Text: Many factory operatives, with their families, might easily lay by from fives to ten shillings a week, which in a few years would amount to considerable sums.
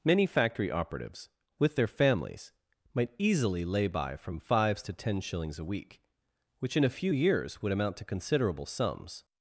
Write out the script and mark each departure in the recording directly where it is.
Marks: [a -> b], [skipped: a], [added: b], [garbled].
Many factory operatives, with their families, might easily lay by from fives to ten shillings a week, which in a few years would amount to considerable sums.